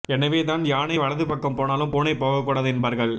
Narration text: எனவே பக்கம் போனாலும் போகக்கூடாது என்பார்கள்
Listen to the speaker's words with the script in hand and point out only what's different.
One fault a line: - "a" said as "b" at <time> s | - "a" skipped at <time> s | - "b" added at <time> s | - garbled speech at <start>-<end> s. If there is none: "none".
- "தான் யானை வலது" added at 0.4 s
- "பூனை" added at 1.9 s